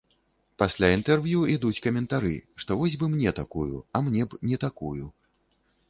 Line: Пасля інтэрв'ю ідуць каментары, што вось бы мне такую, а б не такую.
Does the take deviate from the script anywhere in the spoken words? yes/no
yes